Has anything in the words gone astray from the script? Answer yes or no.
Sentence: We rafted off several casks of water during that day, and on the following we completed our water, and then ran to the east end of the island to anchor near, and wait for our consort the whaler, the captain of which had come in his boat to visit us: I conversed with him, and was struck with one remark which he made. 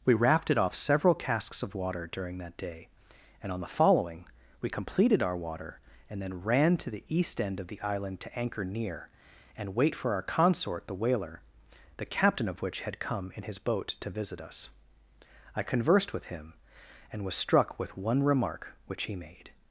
no